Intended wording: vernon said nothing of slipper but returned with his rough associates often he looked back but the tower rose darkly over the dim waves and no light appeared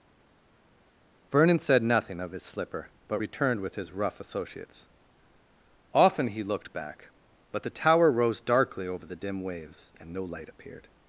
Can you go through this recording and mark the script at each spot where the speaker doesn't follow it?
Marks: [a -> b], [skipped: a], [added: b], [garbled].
vernon said nothing of [added: his] slipper but returned with his rough associates often he looked back but the tower rose darkly over the dim waves and no light appeared